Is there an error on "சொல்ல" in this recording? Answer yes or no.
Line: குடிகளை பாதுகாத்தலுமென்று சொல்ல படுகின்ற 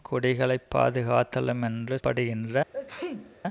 yes